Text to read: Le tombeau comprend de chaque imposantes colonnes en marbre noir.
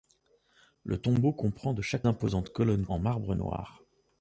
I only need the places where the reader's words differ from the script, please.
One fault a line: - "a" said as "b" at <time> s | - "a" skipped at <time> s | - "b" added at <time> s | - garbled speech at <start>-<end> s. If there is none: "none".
none